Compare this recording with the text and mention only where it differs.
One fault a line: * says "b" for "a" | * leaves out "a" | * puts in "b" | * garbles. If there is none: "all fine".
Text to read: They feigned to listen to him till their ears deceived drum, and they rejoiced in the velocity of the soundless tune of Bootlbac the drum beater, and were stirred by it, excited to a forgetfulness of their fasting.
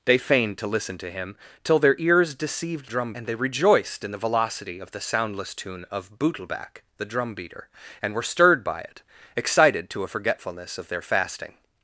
all fine